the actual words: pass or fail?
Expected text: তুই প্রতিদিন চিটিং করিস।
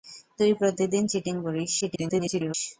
fail